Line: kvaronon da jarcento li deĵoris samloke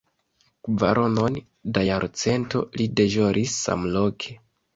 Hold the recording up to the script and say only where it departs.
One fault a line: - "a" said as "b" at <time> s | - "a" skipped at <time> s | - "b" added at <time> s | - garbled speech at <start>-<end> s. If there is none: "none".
none